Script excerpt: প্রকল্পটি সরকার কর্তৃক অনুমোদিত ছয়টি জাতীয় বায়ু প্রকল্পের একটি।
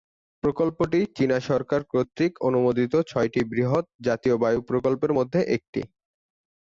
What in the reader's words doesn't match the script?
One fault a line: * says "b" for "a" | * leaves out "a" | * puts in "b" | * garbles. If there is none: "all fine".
* puts in "চীনা"
* puts in "বৃহৎ"
* puts in "মধ্যে"